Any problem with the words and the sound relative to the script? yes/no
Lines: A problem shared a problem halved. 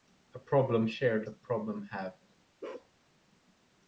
yes